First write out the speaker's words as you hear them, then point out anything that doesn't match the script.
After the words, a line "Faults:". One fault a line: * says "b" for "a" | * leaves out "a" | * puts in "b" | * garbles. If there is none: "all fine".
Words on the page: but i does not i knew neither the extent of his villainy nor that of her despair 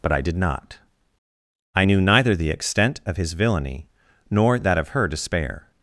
but i did not i knew neither the extent of his villainy nor that of her despair
Faults:
* says "did" for "does"